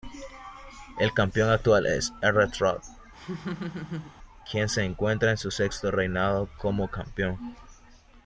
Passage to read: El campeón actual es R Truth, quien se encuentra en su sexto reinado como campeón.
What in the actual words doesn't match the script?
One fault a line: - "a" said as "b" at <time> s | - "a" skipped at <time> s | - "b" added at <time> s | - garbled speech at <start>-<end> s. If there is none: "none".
none